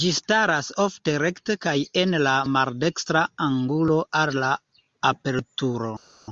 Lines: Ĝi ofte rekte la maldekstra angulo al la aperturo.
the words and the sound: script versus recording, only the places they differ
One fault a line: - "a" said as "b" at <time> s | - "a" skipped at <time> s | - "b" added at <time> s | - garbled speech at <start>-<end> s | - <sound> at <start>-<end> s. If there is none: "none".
- "staras" added at 0.2 s
- "kaj en" added at 1.6 s